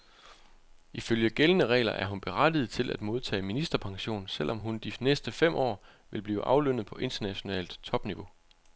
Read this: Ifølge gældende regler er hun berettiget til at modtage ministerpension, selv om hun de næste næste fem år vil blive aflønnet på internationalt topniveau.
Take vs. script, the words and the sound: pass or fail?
fail